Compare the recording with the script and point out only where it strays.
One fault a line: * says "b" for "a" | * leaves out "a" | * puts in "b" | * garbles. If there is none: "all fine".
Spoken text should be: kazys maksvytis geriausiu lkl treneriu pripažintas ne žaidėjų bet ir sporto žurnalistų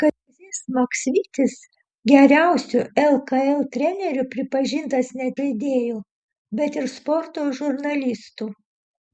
all fine